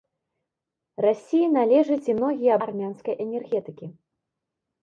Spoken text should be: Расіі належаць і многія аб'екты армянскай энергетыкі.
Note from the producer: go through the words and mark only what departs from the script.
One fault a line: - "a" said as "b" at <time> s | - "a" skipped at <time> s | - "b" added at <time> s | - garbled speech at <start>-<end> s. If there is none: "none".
- "аб'екты" skipped at 2.5 s